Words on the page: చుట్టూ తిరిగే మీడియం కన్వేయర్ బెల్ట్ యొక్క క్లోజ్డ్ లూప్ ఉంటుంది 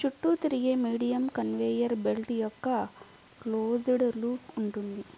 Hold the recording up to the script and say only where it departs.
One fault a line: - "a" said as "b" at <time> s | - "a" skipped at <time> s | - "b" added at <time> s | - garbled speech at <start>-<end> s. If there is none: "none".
none